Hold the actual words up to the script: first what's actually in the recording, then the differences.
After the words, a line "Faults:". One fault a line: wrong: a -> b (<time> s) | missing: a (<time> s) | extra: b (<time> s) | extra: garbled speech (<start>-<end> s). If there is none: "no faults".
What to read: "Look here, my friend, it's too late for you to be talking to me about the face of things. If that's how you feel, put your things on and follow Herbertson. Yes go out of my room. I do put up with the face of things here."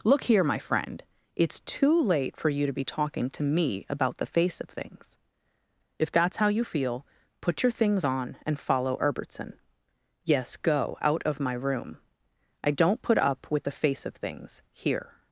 "Look here, my friend, it's too late for you to be talking to me about the face of things. If that's how you feel, put your things on and follow Herbertson. Yes go out of my room. I don't put up with the face of things here."
Faults:
wrong: do -> don't (12.7 s)